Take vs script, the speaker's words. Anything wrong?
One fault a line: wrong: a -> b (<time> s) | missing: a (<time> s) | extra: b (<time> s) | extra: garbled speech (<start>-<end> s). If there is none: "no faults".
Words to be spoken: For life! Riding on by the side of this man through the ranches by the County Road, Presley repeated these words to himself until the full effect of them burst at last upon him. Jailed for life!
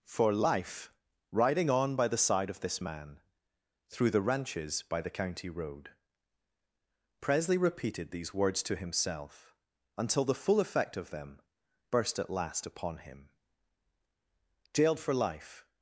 no faults